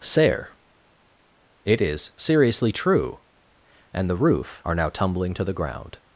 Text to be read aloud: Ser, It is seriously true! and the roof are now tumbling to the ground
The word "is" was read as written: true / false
true